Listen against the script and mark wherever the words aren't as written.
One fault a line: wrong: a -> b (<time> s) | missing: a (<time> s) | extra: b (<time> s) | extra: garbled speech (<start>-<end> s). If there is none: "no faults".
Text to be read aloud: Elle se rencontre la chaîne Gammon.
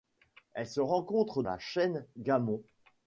no faults